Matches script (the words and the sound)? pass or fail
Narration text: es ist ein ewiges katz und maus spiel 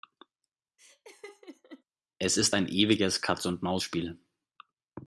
fail